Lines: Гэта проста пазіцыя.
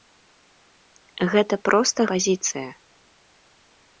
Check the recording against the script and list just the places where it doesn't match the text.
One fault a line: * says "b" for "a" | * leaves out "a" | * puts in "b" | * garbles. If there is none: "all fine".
all fine